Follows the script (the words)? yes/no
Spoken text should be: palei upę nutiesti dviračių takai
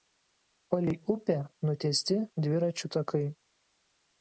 yes